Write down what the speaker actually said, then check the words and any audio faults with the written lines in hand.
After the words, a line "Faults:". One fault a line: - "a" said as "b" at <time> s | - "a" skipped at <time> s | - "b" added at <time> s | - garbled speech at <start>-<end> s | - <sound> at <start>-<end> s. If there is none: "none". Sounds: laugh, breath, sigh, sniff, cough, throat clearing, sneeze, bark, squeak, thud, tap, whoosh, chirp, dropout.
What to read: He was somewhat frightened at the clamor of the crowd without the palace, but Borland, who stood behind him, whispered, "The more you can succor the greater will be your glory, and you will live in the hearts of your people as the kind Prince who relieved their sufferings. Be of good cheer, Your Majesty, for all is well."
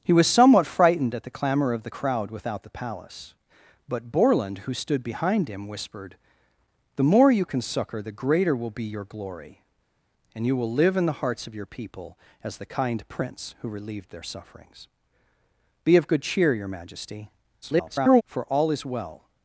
He was somewhat frightened at the clamor of the crowd without the palace, but Borland, who stood behind him, whispered, "The more you can succor the greater will be your glory, and you will live in the hearts of your people as the kind Prince who relieved their sufferings. Be of good cheer, Your Majesty, [garbled] for all is well."
Faults:
- garbled speech at 17.6-18.2 s